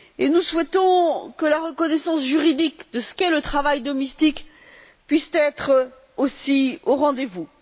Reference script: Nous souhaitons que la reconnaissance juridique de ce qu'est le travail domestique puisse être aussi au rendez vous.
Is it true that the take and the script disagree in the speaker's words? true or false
false